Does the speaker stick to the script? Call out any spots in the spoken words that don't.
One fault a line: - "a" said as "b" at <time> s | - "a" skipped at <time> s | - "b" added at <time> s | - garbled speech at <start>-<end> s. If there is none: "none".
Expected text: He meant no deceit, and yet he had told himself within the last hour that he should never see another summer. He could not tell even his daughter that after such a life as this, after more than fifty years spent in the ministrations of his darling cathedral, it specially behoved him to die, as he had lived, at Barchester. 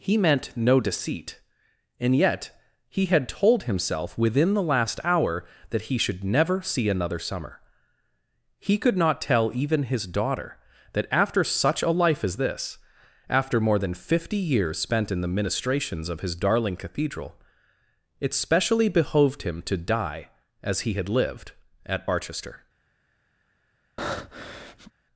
none